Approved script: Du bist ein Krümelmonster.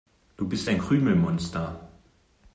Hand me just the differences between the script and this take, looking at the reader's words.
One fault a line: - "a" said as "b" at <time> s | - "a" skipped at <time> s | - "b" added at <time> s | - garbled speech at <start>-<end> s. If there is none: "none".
none